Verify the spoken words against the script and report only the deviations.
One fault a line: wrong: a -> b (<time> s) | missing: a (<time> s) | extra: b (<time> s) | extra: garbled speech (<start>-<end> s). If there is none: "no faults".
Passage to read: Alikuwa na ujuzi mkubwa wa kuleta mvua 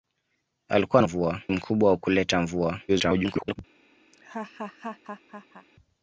wrong: ujuzi -> mvua (1.0 s)
extra: garbled speech (2.9-3.6 s)